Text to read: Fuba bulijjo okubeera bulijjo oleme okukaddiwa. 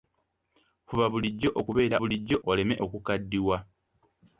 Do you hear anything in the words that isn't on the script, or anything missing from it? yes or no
no